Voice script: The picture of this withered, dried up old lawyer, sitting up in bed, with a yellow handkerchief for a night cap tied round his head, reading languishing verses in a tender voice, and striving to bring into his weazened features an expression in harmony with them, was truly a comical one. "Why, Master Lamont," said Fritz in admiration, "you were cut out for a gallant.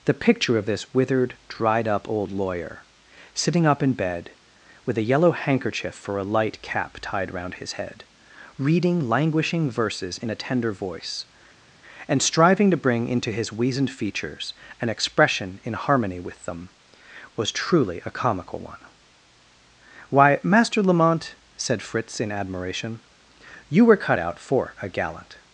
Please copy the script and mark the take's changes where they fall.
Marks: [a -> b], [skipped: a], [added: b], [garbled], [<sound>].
The picture of this withered, dried up old lawyer, sitting up in bed, with a yellow handkerchief for a [night -> light] cap tied round his head, reading languishing verses in a tender voice, and striving to bring into his weazened features an expression in harmony with them, was truly a comical one. "Why, Master Lamont," said Fritz in admiration, "you were cut out for a gallant.